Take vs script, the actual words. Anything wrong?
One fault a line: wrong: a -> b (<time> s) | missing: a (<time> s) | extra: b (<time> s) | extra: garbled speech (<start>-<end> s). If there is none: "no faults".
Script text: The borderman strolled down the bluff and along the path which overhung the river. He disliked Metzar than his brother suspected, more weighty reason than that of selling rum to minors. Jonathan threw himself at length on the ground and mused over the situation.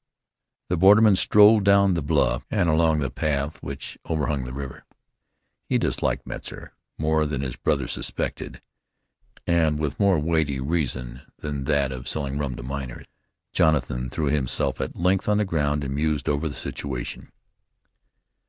extra: more (7.0 s)
extra: and with (9.4 s)